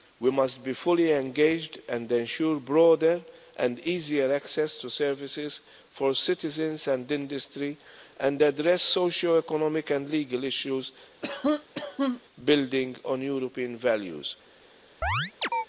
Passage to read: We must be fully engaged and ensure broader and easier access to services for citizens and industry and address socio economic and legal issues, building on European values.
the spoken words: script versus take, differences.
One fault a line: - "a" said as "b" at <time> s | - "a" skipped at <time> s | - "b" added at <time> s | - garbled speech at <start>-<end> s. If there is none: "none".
none